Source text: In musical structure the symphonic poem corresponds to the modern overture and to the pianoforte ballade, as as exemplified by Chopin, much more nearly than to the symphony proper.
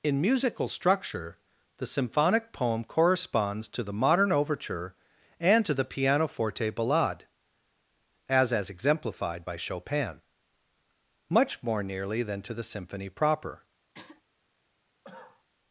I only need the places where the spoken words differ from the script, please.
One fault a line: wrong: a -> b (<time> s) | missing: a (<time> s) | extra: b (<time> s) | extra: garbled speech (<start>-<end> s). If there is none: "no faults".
no faults